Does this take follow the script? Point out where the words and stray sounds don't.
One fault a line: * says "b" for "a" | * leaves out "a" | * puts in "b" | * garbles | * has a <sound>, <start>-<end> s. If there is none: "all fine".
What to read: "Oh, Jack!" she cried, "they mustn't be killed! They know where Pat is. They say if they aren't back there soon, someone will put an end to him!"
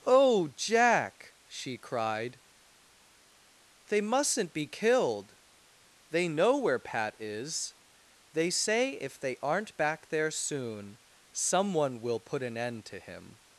all fine